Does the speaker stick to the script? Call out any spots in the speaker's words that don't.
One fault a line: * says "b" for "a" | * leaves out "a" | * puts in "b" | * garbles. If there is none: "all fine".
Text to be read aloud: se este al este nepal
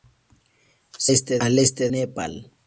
all fine